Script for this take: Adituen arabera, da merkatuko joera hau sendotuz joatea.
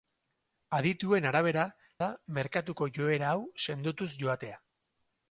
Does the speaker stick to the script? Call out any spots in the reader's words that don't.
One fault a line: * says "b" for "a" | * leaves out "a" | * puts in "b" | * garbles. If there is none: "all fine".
all fine